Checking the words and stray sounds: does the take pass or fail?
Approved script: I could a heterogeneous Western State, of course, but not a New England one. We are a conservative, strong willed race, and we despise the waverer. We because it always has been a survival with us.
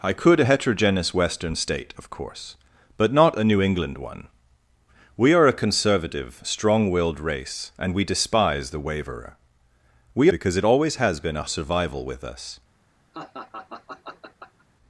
fail